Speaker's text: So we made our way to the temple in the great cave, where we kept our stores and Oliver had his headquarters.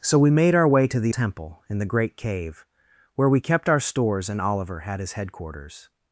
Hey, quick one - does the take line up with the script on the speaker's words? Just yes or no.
yes